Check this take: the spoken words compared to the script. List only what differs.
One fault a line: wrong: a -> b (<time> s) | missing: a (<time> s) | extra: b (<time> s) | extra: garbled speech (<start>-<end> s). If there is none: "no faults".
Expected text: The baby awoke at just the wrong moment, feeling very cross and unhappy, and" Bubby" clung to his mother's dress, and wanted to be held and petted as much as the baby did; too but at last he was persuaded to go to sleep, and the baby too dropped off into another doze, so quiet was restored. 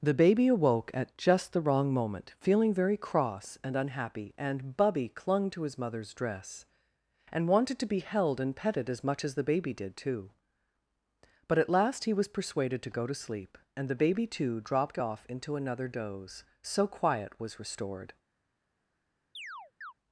no faults